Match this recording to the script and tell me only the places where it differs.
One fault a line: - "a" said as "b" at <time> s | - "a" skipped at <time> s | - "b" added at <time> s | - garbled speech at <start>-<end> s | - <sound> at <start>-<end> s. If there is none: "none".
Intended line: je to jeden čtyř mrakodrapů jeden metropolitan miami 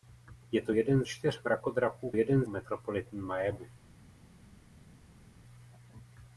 none